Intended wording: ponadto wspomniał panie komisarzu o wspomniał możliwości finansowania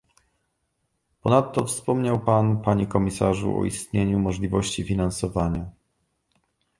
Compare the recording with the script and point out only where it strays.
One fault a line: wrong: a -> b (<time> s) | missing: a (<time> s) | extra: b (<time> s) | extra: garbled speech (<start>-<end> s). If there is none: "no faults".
extra: pan (2.2 s)
wrong: wspomniał -> istnieniu (3.6 s)